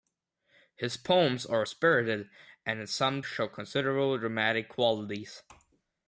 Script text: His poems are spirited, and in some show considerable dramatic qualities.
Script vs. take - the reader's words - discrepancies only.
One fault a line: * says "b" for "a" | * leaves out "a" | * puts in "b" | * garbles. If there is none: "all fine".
all fine